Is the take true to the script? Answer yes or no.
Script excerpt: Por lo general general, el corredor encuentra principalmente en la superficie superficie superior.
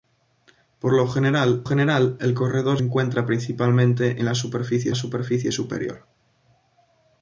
yes